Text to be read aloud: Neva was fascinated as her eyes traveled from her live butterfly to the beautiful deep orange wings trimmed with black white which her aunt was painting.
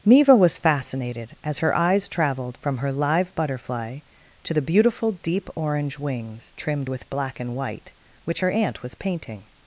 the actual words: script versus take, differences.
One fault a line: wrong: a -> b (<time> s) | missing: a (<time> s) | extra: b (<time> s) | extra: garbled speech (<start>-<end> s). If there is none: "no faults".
extra: and (7.4 s)